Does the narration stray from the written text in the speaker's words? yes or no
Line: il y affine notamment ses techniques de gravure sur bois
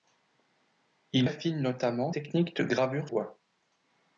yes